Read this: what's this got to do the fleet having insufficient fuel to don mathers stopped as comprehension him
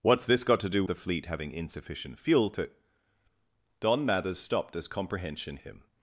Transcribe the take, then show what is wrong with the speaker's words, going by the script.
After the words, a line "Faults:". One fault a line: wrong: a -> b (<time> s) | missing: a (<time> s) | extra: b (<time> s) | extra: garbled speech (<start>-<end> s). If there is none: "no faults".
what's this got to do the fleet having insufficient fuel to don mathers stopped as comprehension him
Faults:
no faults